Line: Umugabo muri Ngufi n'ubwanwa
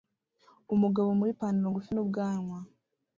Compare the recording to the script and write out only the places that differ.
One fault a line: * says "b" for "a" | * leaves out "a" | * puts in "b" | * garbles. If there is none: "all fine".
* puts in "Ipanaro"